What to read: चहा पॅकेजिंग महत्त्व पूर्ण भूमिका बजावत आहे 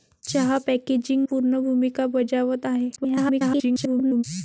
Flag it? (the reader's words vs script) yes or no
yes